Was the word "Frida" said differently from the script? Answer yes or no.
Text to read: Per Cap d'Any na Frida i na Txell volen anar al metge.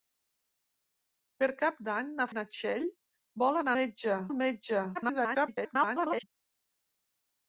yes